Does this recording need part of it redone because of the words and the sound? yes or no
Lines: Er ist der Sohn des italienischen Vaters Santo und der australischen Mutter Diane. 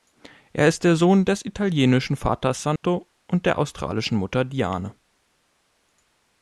yes